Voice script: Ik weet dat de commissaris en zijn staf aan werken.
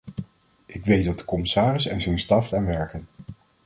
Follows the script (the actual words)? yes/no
yes